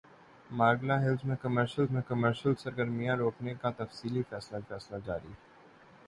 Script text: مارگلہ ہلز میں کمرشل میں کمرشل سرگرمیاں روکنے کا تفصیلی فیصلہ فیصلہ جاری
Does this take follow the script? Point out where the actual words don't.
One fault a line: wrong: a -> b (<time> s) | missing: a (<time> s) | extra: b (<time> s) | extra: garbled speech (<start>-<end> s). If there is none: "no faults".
no faults